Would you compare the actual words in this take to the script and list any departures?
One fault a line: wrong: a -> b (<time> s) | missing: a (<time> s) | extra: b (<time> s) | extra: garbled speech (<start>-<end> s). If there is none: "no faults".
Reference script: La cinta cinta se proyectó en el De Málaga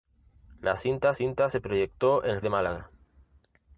no faults